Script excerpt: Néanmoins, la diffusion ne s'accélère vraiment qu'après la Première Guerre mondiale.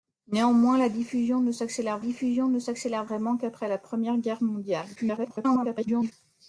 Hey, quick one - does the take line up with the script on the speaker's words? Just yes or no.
no